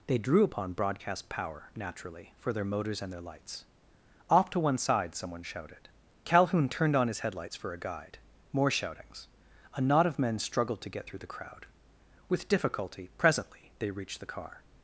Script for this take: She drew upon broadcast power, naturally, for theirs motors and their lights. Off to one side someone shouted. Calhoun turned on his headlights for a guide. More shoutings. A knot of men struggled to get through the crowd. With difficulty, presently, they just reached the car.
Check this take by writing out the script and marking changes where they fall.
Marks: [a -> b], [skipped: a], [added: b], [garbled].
[She -> They] drew upon broadcast power, naturally, for [theirs -> their] motors and their lights. Off to one side someone shouted. Calhoun turned on his headlights for a guide. More shoutings. A knot of men struggled to get through the crowd. With difficulty, presently, they [skipped: just] reached the car.